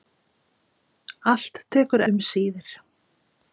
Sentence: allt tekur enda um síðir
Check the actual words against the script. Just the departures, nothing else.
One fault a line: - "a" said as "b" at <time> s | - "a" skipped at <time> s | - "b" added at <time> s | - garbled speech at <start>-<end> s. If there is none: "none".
- "enda" skipped at 2.0 s